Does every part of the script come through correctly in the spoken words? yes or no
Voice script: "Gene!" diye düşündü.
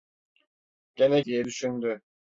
yes